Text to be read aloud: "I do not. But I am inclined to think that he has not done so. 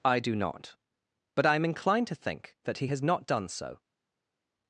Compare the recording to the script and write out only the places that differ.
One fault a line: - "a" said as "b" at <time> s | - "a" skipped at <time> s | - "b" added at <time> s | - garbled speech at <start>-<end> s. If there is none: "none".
none